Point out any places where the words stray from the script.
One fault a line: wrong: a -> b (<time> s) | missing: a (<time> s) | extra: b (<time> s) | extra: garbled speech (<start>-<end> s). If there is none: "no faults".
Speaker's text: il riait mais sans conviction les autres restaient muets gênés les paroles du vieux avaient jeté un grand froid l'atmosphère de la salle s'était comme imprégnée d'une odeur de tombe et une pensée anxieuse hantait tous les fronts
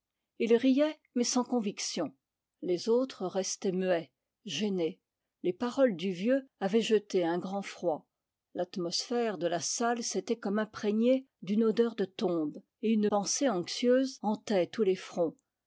no faults